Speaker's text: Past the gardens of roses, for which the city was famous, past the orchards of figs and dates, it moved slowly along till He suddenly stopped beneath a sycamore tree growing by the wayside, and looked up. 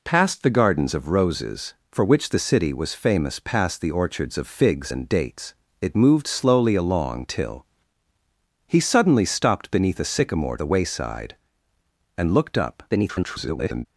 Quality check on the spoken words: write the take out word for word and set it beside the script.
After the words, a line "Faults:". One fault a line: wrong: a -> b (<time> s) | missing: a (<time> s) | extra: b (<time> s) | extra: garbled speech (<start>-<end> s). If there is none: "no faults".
Past the gardens of roses, for which the city was famous, past the orchards of figs and dates, it moved slowly along till He suddenly stopped beneath a sycamore the wayside, and looked up. [garbled]
Faults:
missing: tree growing by (10.6 s)
extra: garbled speech (12.9-13.9 s)